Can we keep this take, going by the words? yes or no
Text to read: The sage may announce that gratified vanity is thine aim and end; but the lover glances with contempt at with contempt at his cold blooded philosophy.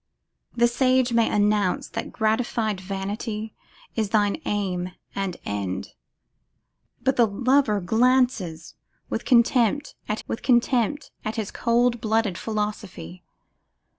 yes